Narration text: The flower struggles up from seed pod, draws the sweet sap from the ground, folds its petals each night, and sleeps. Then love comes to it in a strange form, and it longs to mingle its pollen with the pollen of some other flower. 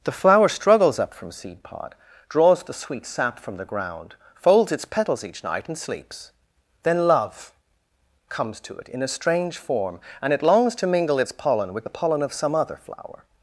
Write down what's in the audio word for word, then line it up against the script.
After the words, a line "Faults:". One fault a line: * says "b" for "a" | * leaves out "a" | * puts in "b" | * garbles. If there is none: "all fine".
The flower struggles up from seed pod, draws the sweet sap from the ground, folds its petals each night, and sleeps. Then love comes to it in a strange form, and it longs to mingle its pollen with the pollen of some other flower.
Faults:
all fine